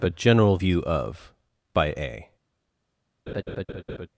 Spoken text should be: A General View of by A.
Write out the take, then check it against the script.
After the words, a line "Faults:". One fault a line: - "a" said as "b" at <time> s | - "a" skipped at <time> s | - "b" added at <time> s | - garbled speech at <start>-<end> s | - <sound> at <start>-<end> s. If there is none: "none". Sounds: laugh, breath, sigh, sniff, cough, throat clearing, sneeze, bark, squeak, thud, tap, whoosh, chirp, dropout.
A General View of by A.
Faults:
- laugh at 3.3-4.1 s